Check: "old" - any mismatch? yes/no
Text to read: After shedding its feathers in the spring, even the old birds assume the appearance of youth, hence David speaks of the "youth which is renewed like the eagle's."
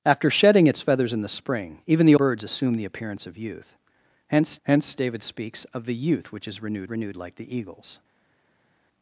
yes